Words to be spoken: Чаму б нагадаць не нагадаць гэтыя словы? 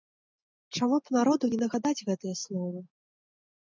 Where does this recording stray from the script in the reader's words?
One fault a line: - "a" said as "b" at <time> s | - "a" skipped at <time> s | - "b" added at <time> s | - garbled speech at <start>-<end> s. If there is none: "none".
- "нагадаць" said as "народу" at 1.2 s